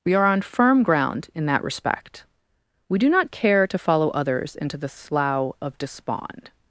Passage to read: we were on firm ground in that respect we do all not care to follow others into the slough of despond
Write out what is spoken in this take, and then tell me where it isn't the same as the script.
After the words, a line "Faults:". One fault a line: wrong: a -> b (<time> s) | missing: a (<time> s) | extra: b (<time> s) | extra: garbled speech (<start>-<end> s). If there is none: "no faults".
we are on firm ground in that respect we do not care to follow others into the slough of despond
Faults:
wrong: were -> are (0.1 s)
missing: all (3.1 s)